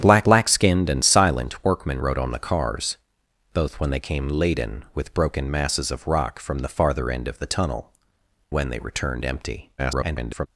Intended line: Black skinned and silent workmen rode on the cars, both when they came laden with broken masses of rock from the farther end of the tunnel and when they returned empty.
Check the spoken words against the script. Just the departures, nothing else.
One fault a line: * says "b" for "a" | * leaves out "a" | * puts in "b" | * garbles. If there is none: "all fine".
* puts in "black"
* leaves out "and"
* garbles